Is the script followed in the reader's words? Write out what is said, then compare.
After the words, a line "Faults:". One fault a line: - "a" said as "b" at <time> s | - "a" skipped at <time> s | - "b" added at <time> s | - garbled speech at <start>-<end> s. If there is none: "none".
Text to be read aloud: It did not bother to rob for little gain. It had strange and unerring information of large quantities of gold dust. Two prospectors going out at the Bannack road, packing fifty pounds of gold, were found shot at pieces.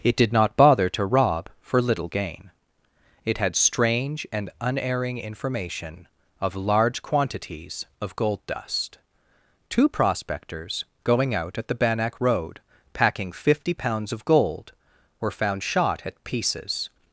It did not bother to rob for little gain. It had strange and unerring information of large quantities of gold dust. Two prospectors going out at the Bannack road, packing fifty pounds of gold, were found shot at pieces.
Faults:
none